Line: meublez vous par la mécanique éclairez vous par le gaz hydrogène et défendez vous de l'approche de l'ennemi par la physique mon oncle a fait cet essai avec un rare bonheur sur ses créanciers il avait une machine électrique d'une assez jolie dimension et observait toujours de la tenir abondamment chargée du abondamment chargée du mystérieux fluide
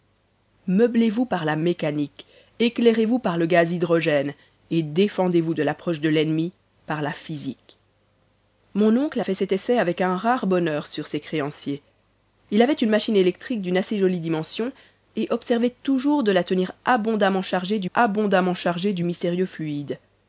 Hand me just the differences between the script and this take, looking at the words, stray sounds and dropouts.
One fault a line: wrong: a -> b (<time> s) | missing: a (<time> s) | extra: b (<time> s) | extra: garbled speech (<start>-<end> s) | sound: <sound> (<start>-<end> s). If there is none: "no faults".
no faults